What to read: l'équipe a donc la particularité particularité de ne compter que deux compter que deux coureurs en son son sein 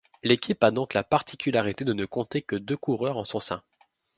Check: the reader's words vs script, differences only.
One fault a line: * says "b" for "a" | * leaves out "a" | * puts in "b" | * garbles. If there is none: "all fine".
* leaves out "particularité"
* leaves out "compter que deux"
* leaves out "son"